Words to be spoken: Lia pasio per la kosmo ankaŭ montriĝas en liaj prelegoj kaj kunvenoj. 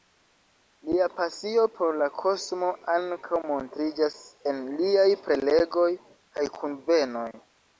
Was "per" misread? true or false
true